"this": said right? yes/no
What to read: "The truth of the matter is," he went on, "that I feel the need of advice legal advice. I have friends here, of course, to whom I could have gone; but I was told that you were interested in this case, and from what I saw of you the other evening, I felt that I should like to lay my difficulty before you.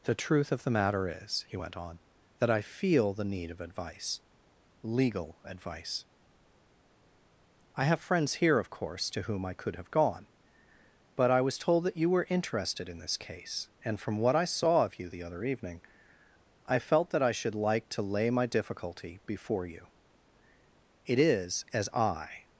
yes